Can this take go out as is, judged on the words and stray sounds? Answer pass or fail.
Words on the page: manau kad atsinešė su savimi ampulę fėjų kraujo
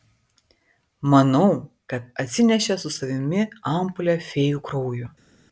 pass